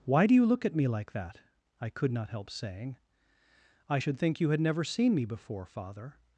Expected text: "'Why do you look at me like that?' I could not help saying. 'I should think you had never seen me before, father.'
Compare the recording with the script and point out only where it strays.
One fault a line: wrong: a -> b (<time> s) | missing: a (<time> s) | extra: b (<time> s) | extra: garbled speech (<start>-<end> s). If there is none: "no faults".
no faults